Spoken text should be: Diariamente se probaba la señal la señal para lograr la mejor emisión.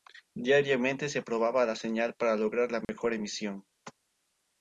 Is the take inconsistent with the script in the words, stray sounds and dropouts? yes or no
yes